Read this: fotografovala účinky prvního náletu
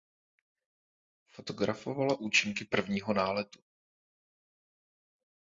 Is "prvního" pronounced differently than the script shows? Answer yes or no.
no